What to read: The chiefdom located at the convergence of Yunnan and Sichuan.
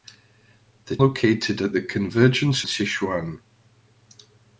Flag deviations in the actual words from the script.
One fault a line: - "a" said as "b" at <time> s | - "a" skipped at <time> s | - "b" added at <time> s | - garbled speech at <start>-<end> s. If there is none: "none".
- "chiefdom" skipped at 1.0 s
- "of Yunnan and" skipped at 2.7 s